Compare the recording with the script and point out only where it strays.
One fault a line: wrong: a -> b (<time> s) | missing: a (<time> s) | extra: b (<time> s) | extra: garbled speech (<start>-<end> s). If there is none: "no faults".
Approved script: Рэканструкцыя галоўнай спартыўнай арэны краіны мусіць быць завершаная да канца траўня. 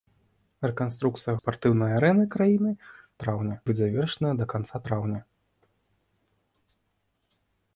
missing: галоўнай (1.3 s)
wrong: мусіць -> траўня (3.3 s)